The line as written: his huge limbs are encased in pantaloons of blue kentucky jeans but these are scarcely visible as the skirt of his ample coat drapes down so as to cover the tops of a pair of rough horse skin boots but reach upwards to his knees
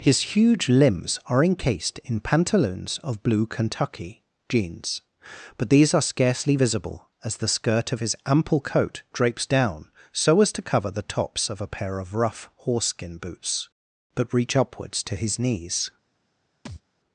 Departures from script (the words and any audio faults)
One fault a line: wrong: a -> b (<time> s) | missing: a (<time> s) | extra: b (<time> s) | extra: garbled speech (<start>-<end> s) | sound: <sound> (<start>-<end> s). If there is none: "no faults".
sound: thud (16.7-16.8 s)